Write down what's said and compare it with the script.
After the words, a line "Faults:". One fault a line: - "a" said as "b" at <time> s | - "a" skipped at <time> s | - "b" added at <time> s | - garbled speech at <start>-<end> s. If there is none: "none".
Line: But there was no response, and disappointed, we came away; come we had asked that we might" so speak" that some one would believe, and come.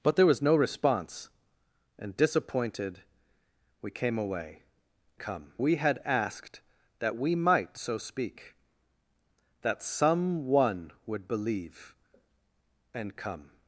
But there was no response, and disappointed, we came away; come we had asked that we might" so speak" that some one would believe, and come.
Faults:
none